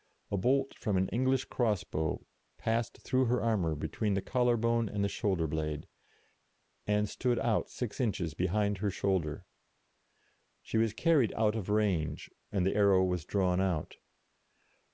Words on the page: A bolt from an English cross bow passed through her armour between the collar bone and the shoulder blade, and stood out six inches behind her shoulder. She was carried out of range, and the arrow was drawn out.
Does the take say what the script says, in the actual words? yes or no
yes